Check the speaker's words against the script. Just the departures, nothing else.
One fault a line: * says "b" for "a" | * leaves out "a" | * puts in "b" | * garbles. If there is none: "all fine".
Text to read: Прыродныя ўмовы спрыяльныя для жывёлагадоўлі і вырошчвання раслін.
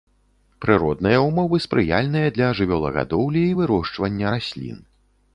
all fine